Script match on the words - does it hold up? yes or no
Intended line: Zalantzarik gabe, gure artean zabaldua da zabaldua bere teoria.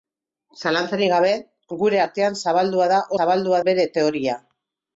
yes